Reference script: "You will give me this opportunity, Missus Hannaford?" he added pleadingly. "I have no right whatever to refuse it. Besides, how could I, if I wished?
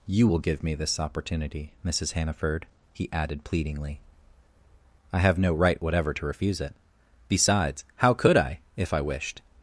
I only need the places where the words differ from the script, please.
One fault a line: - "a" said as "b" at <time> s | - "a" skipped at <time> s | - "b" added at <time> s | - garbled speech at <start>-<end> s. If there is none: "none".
none